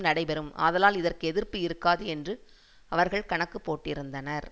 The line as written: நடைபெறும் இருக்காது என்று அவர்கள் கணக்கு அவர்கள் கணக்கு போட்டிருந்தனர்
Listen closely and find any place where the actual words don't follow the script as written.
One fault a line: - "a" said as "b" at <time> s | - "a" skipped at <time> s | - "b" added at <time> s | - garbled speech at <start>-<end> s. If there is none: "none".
- "ஆதலால் இதற்கு எதிர்ப்பு" added at 0.6 s
- "அவர்கள் கணக்கு" skipped at 3.6 s